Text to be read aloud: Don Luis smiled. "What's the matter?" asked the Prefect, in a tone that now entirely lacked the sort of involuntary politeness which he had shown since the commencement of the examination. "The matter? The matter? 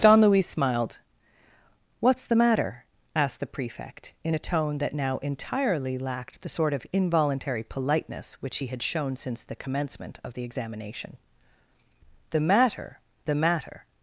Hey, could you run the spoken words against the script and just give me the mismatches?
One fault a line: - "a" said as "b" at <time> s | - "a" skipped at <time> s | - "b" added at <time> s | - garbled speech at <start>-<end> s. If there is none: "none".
none